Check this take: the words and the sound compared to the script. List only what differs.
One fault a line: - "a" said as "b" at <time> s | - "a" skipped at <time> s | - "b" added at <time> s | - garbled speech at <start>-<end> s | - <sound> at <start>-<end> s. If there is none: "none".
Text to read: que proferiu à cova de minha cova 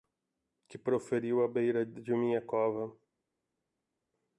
- "cova" said as "beira" at 1.5 s